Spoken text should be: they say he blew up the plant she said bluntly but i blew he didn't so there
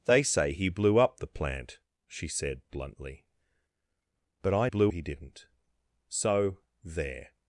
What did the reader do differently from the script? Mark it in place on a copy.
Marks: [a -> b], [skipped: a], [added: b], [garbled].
they say he blew up the plant she said bluntly but i blew he didn't so there